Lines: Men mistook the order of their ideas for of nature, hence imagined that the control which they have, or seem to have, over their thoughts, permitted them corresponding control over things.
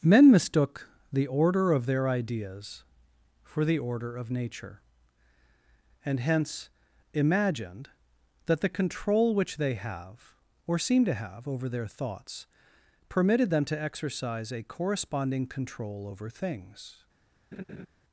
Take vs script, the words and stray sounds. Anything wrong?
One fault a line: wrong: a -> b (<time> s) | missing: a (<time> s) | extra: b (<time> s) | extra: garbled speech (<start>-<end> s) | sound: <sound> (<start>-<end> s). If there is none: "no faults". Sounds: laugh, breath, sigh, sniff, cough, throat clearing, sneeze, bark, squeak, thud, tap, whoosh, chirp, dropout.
extra: the order (3.6 s)
extra: and (6.0 s)
extra: to exercise a (13.7 s)
sound: laugh (17.5-17.9 s)